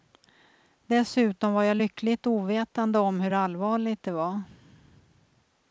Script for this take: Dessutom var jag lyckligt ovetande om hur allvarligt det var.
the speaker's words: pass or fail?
pass